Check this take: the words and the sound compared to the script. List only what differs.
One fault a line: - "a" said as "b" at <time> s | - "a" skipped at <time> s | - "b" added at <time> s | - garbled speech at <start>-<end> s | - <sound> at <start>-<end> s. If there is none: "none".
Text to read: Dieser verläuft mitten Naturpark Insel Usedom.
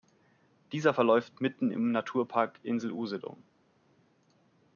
- "im" added at 1.7 s